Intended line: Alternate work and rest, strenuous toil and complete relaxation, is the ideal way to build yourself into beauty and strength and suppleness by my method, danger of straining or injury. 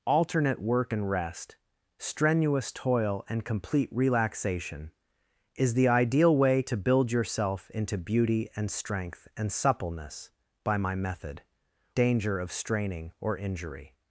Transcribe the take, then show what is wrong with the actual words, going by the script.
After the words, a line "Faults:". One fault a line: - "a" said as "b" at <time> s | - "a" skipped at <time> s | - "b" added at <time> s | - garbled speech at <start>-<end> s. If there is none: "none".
Alternate work and rest, strenuous toil and complete relaxation, is the ideal way to build yourself into beauty and strength and suppleness by my method, danger of straining or injury.
Faults:
none